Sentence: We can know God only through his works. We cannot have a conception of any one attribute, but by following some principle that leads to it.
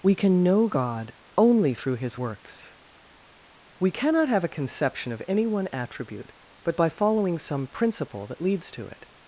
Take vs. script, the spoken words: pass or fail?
pass